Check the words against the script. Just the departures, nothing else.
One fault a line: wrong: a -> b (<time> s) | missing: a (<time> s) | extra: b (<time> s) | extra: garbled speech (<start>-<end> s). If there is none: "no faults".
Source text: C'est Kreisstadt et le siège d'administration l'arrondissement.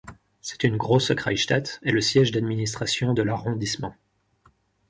extra: une Große (0.6 s)
extra: de (3.1 s)